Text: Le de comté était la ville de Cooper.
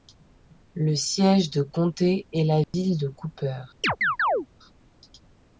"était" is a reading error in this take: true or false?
true